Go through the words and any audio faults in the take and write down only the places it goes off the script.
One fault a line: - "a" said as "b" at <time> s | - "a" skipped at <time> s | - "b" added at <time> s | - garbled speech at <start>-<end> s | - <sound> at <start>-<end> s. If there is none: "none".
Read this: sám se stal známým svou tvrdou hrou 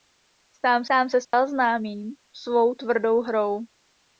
- "sám" added at 0.9 s
- dropout at 1.2-1.3 s